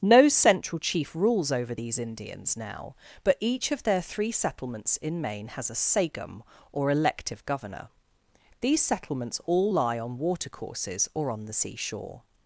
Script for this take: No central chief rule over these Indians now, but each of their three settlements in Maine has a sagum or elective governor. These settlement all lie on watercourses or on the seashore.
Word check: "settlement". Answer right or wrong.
wrong